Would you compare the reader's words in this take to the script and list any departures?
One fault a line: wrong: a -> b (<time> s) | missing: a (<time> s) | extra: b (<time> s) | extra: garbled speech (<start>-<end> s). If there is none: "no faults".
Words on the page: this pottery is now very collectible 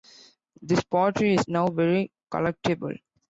no faults